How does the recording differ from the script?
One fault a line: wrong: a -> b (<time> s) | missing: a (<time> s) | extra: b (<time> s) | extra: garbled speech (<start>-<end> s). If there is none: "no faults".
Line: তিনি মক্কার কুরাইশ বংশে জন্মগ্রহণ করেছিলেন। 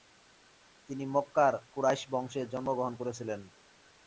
no faults